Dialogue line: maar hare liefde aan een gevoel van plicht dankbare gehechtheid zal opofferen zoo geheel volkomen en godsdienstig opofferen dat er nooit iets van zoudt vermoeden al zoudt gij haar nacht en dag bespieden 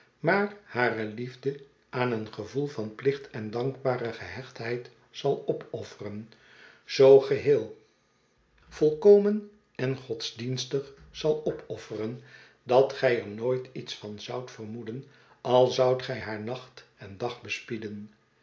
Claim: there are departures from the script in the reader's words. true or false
true